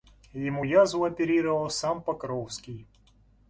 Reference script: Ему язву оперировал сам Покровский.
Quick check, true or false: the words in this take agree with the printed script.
true